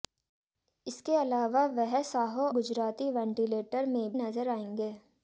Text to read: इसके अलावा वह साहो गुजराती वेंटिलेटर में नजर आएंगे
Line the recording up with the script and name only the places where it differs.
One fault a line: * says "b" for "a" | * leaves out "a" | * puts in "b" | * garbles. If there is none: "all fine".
all fine